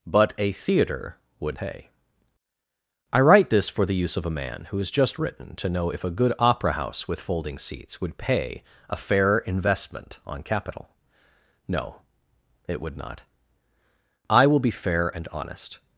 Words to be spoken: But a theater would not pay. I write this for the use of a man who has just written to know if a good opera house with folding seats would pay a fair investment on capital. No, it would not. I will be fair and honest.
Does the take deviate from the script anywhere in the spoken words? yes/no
yes